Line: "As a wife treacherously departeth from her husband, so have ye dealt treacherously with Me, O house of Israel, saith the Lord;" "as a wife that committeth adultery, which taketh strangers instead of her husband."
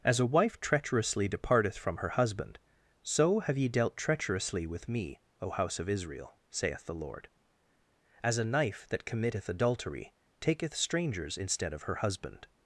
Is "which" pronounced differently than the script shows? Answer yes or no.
yes